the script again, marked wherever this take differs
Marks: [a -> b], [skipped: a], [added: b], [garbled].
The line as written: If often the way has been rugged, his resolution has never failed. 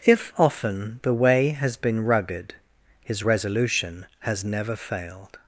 If often the way has been rugged, his resolution has never failed.